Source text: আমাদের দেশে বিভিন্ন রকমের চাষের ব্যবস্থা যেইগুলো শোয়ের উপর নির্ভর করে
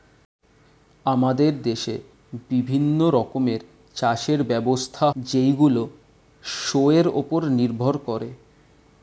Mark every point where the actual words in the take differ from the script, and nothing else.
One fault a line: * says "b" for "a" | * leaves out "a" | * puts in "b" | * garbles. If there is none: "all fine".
all fine